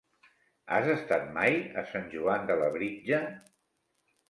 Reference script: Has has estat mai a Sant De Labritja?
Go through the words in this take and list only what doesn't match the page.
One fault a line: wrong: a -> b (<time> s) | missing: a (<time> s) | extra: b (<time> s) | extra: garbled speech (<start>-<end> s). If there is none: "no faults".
missing: has (0.9 s)
extra: Joan (2.2 s)